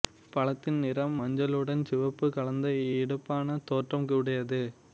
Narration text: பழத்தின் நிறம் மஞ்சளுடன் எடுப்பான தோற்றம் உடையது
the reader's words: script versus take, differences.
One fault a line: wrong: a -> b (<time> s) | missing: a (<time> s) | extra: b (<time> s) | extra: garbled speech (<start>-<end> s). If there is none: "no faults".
extra: சிவப்பு கலந்த (1.9 s)